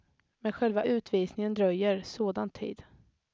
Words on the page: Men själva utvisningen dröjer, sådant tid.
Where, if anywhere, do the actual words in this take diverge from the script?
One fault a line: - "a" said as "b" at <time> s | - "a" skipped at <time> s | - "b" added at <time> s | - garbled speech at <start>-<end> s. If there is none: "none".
none